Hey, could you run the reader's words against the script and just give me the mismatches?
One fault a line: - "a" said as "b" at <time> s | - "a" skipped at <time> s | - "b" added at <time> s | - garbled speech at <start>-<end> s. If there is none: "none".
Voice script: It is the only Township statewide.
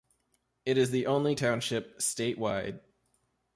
none